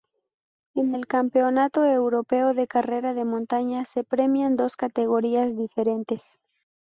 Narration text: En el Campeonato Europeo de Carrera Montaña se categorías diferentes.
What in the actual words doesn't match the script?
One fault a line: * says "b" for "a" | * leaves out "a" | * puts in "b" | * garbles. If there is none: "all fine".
* puts in "de"
* puts in "premian dos"